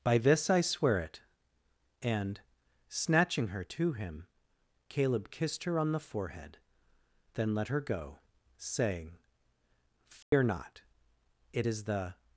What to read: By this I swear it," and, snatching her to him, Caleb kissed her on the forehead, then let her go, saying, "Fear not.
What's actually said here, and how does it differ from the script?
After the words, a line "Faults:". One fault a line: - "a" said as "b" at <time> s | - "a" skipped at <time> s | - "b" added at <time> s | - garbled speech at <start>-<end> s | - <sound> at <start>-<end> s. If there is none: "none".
By this I swear it," and, snatching her to him, Caleb kissed her on the forehead, then let her go, saying, "Fear not. It is the
Faults:
- dropout at 10.2-10.3 s
- "It is the" added at 11.5 s